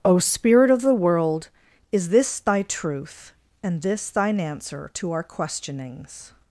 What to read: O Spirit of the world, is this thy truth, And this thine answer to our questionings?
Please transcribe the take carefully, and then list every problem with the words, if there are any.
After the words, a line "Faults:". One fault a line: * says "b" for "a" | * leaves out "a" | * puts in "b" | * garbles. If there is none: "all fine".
O Spirit of the world, is this thy truth, And this thine answer to our questionings?
Faults:
all fine